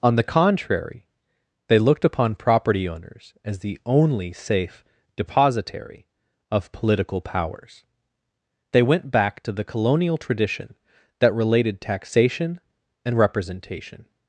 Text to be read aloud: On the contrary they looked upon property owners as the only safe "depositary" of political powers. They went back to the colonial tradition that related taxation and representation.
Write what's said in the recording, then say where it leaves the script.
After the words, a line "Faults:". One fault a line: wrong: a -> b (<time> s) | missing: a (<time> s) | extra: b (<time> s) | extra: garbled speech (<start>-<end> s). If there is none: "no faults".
On the contrary they looked upon property owners as the only safe "depositary" of political powers. They went back to the colonial tradition that related taxation and representation.
Faults:
no faults